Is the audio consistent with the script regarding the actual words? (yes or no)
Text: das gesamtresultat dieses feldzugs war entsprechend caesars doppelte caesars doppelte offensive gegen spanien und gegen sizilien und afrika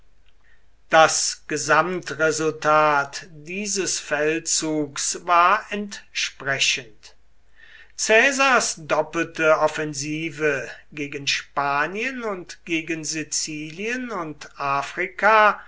no